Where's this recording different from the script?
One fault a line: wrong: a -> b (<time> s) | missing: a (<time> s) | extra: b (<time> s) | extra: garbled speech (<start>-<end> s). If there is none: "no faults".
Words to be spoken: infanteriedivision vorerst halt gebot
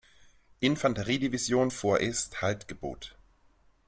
no faults